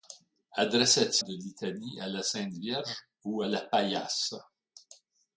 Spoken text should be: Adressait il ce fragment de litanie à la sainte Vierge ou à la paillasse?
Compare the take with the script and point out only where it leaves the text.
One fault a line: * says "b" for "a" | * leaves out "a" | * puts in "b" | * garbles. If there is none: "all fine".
* leaves out "il ce fragment"